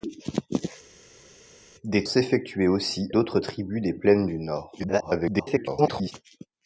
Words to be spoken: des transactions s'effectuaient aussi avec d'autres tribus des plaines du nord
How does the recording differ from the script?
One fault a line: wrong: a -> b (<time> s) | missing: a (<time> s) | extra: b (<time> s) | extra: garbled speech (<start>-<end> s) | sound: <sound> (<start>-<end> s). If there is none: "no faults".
missing: transactions (2.0 s)
missing: avec (3.1 s)
extra: garbled speech (4.8-6.1 s)